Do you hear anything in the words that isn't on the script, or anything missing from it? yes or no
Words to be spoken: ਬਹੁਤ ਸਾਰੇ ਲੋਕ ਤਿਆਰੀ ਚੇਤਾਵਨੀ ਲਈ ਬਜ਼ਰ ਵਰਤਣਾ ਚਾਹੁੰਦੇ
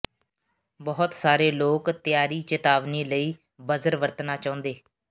no